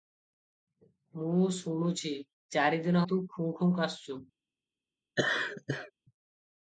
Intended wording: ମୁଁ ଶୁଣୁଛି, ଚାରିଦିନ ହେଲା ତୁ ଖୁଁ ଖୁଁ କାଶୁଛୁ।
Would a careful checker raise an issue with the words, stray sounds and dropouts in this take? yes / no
yes